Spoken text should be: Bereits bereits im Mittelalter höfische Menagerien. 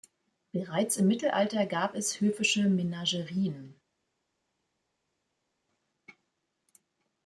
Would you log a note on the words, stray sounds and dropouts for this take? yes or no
yes